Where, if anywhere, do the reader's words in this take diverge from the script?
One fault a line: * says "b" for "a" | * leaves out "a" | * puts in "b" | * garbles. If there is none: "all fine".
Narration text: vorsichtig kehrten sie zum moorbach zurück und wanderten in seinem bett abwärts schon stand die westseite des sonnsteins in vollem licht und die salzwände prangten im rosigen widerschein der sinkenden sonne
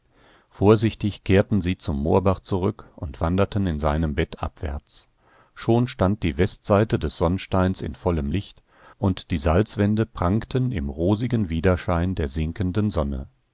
all fine